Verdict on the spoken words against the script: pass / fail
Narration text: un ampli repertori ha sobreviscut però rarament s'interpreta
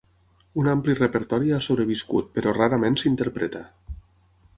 pass